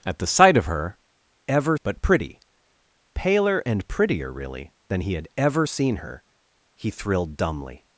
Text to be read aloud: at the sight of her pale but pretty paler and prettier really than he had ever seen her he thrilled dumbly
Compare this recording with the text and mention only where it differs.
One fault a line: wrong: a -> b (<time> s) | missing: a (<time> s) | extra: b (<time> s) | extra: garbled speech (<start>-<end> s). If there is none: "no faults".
wrong: pale -> ever (1.5 s)